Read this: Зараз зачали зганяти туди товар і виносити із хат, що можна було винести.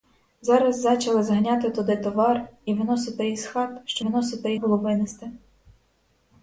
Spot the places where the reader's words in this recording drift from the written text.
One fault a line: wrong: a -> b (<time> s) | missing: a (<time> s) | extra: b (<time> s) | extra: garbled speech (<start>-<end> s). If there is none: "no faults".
wrong: можна -> виносити (4.0 s)